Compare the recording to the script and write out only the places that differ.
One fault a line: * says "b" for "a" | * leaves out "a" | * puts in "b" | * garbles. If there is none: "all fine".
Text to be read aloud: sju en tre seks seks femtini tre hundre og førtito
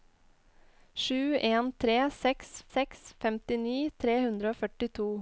all fine